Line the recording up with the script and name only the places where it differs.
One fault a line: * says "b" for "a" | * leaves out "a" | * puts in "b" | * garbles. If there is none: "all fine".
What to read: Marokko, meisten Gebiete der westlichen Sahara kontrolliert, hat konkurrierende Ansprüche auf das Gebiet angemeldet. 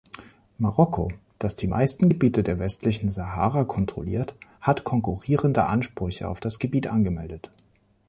* puts in "das die"